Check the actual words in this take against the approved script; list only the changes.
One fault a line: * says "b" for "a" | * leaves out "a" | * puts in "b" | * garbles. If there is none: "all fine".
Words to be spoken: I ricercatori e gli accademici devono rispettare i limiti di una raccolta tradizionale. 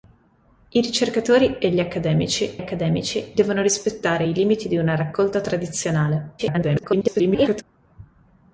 * puts in "accademici"
* garbles